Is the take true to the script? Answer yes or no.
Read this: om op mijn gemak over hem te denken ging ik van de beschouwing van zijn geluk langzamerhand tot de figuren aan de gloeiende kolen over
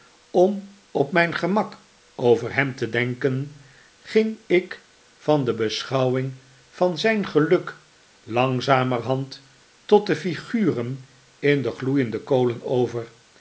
no